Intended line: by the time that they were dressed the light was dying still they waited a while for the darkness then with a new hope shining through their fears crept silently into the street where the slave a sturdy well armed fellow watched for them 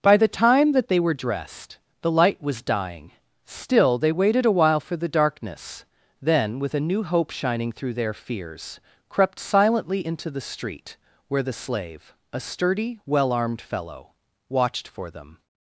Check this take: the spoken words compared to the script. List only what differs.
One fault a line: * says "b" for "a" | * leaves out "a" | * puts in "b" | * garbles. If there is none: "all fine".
all fine